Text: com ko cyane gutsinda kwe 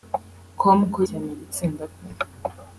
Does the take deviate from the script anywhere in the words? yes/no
no